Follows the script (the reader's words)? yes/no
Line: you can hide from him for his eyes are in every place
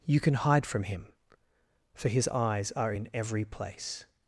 yes